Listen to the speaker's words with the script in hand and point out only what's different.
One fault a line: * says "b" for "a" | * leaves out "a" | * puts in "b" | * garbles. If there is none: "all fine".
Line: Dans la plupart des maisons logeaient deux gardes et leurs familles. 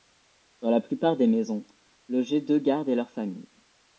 all fine